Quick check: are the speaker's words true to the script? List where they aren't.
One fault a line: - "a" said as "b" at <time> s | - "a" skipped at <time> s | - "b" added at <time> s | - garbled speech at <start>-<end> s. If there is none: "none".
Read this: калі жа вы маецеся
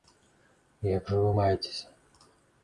- "калі" said as "як" at 1.0 s